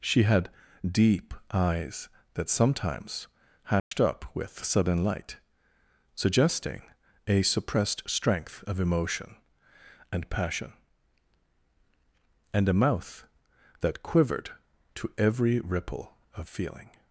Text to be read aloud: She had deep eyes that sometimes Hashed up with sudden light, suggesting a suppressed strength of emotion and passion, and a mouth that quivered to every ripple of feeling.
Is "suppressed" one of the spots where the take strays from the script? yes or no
no